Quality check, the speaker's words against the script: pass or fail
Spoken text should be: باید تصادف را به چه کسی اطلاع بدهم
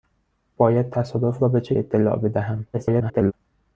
fail